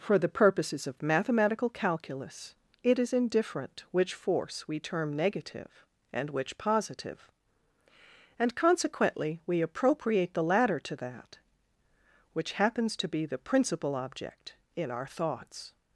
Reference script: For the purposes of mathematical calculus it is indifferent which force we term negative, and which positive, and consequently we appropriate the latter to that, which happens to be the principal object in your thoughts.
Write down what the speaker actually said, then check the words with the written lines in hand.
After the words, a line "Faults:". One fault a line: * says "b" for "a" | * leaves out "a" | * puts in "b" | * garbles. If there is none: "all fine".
For the purposes of mathematical calculus it is indifferent which force we term negative, and which positive, and consequently we appropriate the latter to that, which happens to be the principal object in our thoughts.
Faults:
* says "our" for "your"